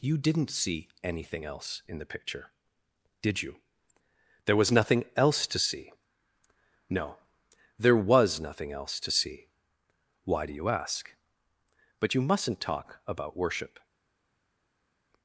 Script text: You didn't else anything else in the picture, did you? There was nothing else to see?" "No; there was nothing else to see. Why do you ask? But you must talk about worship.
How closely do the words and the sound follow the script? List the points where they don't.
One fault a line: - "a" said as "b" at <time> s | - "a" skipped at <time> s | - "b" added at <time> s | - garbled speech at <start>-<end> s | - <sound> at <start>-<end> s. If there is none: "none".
- "else" said as "see" at 0.5 s
- "must" said as "mustn't" at 12.2 s